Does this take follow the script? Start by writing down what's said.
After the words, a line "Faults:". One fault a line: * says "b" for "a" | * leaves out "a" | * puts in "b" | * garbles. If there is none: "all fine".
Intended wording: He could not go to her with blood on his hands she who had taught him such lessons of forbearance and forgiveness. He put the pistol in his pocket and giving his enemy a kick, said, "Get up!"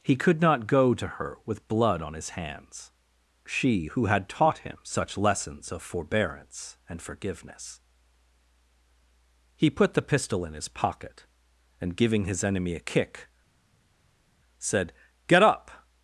He could not go to her with blood on his hands she who had taught him such lessons of forbearance and forgiveness. He put the pistol in his pocket and giving his enemy a kick, said, "Get up!"
Faults:
all fine